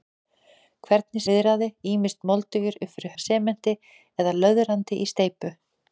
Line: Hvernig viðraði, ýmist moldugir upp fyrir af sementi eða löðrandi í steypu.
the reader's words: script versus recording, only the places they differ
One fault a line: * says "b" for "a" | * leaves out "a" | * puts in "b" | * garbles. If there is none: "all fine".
all fine